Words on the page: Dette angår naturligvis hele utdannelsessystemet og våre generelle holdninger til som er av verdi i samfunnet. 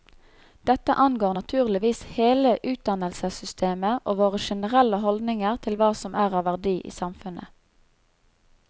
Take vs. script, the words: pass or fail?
fail